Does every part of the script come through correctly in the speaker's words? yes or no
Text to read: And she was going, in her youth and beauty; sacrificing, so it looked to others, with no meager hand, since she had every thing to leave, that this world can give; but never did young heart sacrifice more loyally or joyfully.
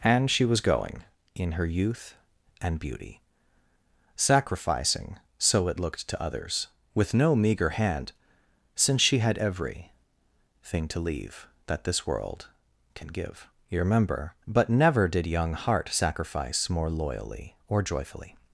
no